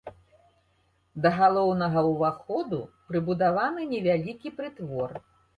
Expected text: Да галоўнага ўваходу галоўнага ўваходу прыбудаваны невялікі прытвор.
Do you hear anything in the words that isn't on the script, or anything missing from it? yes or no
yes